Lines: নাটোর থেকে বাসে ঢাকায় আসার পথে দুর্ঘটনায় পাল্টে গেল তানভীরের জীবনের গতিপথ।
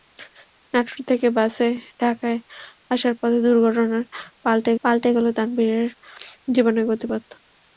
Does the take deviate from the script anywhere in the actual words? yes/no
yes